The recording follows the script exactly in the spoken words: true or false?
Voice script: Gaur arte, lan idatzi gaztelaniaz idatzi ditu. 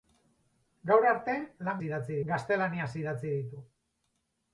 true